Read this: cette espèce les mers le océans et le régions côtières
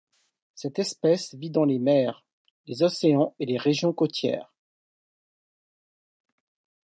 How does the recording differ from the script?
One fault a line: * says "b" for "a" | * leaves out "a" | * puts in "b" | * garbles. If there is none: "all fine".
* puts in "vit dans"
* says "les" for "le"
* says "les" for "le"